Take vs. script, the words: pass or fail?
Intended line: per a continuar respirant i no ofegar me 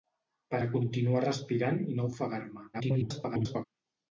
fail